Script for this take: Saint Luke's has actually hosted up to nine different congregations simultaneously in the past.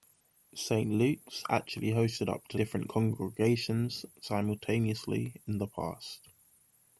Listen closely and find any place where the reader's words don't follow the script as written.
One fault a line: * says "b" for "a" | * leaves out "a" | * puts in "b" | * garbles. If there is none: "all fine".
* leaves out "has"
* leaves out "nine"